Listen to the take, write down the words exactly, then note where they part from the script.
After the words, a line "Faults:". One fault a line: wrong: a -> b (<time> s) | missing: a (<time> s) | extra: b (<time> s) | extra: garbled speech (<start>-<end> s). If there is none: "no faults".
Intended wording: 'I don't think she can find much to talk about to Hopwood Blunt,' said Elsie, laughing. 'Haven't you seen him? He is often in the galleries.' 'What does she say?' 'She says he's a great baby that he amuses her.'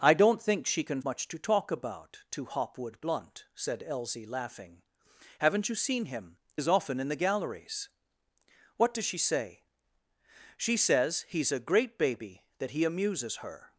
'I don't think she can much to talk about to Hopwood Blunt,' said Elsie, laughing. 'Haven't you seen him? Is often in the galleries.' 'What does she say?' 'She says he's a great baby that he amuses her.'
Faults:
missing: find (1.0 s)
missing: He (6.4 s)